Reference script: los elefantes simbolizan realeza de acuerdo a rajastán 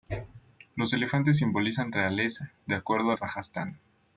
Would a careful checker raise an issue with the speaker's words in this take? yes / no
no